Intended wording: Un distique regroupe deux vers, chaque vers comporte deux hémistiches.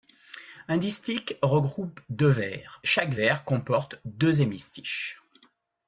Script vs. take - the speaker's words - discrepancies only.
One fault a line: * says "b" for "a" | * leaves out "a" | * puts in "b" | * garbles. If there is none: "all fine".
all fine